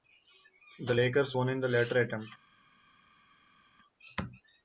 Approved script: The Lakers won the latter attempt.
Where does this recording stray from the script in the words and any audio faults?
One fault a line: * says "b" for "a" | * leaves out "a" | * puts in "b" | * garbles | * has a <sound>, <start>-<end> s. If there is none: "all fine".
* puts in "in"